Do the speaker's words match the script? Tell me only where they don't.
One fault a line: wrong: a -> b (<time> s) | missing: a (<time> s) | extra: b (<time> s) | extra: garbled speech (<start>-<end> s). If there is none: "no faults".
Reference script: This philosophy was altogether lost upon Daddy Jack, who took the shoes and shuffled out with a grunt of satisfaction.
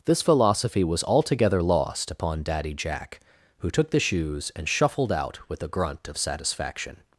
no faults